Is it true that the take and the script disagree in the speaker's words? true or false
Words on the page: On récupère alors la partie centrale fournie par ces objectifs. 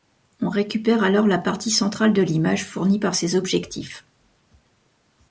true